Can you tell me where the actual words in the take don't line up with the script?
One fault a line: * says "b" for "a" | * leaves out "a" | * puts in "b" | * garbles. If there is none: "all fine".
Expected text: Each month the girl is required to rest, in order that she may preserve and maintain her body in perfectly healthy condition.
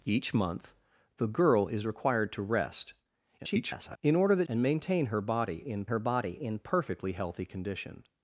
* garbles
* says "and maintain her body in" for "she may preserve and maintain"